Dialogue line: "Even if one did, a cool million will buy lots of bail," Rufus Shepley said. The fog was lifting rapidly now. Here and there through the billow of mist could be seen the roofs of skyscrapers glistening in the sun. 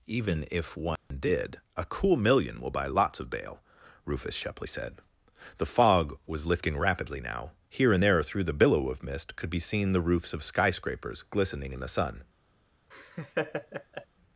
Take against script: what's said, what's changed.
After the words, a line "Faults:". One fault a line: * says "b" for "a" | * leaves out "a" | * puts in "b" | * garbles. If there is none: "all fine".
"Even if one did, a cool million will buy lots of bail," Rufus Shepley said. The fog was lifting rapidly now. Here and there through the billow of mist could be seen the roofs of skyscrapers glistening in the sun.
Faults:
all fine